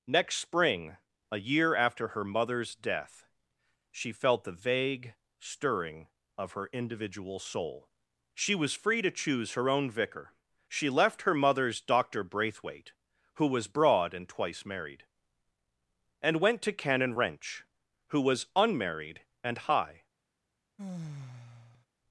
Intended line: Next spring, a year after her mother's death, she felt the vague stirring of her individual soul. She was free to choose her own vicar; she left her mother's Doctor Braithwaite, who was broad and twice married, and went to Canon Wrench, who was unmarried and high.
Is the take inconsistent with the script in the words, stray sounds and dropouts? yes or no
yes